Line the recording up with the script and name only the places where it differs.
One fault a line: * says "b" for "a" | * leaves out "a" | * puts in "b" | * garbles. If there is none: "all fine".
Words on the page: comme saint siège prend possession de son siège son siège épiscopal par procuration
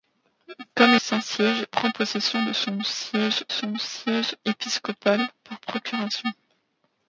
all fine